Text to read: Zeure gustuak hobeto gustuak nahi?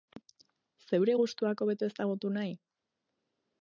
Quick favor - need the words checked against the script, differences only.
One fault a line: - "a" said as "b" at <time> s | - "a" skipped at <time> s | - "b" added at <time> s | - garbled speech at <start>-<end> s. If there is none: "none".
- "gustuak" said as "ezagutu" at 1.9 s